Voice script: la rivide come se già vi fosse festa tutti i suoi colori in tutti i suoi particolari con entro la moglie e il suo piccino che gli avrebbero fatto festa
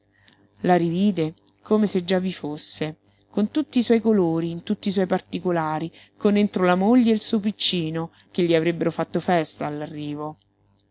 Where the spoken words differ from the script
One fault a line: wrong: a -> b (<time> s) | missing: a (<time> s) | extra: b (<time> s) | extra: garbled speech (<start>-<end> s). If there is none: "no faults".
wrong: festa -> con (3.3 s)